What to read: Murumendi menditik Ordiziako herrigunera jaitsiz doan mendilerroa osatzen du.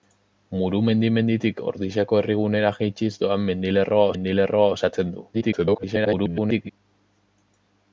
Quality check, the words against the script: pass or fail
fail